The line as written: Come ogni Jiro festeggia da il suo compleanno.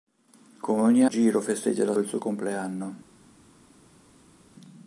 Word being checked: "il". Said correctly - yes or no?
yes